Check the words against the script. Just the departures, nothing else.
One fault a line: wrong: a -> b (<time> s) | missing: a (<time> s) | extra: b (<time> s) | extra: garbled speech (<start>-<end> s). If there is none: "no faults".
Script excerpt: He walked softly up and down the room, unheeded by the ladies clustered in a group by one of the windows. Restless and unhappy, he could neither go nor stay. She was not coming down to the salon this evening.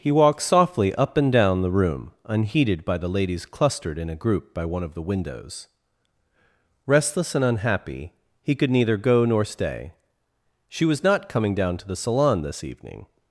no faults